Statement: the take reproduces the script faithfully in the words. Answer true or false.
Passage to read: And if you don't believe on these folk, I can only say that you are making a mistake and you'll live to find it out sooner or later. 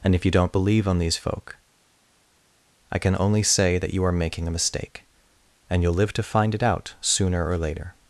true